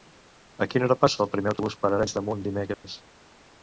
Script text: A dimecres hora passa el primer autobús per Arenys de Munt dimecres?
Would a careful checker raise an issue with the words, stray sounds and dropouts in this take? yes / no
yes